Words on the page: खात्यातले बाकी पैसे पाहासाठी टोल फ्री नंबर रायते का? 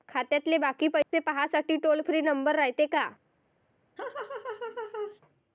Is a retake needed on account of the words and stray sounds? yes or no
yes